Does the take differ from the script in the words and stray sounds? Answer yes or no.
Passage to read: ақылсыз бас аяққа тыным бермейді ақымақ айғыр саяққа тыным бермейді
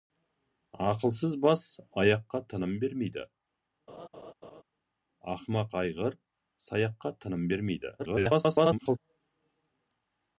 yes